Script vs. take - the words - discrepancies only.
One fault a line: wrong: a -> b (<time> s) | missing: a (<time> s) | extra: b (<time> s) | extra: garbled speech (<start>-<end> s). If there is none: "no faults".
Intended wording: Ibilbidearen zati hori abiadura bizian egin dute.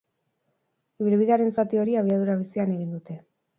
no faults